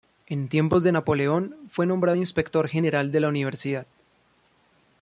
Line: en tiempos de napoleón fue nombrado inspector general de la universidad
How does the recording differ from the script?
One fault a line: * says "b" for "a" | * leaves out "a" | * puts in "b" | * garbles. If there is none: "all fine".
all fine